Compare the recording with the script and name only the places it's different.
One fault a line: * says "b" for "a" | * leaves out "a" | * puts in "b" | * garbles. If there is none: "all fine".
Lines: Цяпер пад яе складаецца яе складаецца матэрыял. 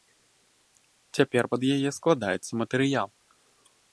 * leaves out "яе складаецца"